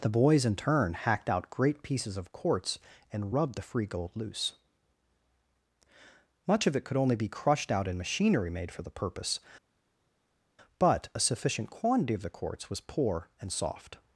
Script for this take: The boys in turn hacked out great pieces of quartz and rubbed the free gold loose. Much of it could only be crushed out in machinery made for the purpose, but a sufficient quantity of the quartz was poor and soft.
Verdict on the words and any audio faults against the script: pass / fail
pass